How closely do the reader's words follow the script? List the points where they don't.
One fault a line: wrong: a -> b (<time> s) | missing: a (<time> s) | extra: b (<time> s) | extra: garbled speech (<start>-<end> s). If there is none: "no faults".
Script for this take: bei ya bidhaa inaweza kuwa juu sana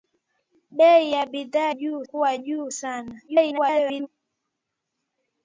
wrong: inaweza -> juu (1.7 s)
extra: garbled speech (3.3-4.1 s)